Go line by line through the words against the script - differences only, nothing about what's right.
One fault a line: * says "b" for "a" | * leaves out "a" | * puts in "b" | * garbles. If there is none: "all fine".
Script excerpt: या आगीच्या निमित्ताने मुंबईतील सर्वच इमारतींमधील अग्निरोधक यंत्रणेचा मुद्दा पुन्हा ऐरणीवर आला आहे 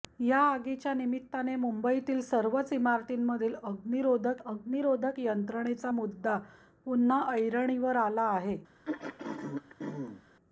* puts in "अग्निरोधक"